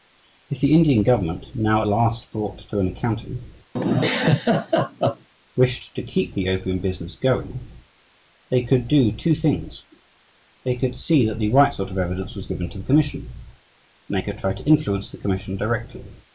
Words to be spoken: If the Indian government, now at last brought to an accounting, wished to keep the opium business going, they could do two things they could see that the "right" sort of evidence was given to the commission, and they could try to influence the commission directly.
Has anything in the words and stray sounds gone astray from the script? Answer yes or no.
yes